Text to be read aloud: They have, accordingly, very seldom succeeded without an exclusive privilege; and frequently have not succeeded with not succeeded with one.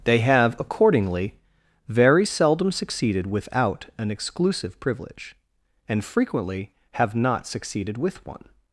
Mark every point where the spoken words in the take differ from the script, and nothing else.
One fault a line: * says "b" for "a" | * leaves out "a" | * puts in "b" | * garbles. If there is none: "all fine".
* leaves out "not succeeded with"